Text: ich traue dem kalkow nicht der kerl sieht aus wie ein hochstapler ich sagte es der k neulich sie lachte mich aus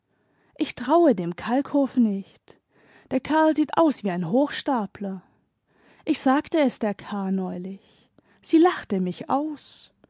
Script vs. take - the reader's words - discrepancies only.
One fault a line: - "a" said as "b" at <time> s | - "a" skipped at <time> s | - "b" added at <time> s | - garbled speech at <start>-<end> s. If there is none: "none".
none